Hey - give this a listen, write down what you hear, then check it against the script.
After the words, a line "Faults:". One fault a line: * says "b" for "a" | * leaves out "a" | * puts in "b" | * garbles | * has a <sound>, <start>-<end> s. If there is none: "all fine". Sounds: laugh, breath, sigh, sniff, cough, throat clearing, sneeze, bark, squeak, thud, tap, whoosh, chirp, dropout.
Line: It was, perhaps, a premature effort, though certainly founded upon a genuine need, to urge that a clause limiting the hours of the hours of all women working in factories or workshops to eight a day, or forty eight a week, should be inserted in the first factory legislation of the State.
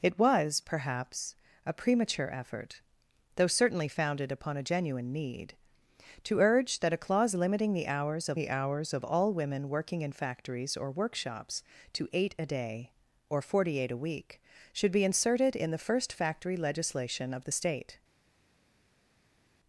It was, perhaps, a premature effort, though certainly founded upon a genuine need, to urge that a clause limiting the hours of the hours of all women working in factories or workshops to eight a day, or forty eight a week, should be inserted in the first factory legislation of the State.
Faults:
all fine